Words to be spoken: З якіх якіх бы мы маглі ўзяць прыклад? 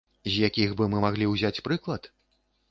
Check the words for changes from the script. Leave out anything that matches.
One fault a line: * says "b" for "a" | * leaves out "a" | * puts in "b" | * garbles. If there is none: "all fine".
* leaves out "якіх"